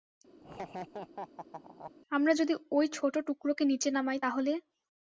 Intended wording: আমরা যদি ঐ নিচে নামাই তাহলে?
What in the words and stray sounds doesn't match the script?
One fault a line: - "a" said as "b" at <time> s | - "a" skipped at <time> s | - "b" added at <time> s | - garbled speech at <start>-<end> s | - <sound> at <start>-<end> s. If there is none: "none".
- laugh at 0.4-1.9 s
- "ছোট টুকরোকে" added at 2.9 s